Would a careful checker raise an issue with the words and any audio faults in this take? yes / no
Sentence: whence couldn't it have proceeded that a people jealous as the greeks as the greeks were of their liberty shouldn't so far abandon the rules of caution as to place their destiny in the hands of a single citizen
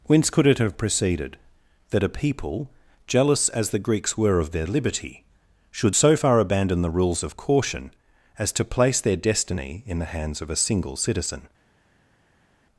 yes